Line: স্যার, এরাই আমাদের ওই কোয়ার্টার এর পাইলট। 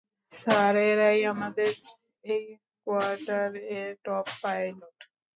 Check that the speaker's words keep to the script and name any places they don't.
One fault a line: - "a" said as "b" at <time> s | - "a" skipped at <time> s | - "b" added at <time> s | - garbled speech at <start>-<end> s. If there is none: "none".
- "ওই" said as "এই" at 2.2 s
- "টপ" added at 4.0 s